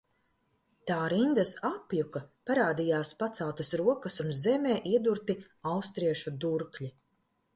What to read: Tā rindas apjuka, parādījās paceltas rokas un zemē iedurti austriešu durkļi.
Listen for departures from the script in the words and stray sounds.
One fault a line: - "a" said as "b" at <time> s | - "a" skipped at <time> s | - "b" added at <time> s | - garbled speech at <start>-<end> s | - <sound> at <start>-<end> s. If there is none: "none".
none